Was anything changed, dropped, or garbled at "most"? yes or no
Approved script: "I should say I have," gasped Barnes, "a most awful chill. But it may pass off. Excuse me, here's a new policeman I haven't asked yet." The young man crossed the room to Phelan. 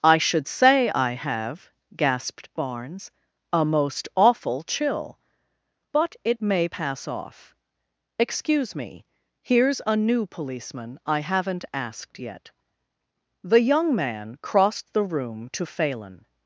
no